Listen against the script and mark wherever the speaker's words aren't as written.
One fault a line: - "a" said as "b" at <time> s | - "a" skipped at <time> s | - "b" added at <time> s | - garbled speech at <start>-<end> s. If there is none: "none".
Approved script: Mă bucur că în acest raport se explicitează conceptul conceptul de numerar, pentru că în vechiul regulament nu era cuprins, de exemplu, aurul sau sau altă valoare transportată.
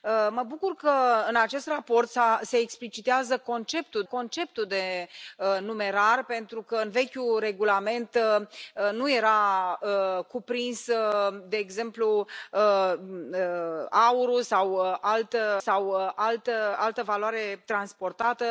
none